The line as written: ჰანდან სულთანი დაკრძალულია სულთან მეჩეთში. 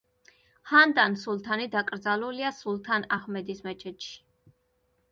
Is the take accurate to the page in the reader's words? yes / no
no